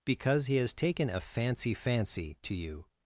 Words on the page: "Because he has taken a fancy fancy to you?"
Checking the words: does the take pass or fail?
pass